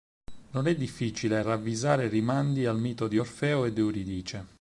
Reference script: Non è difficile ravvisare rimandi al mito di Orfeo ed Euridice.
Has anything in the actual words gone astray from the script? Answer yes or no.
no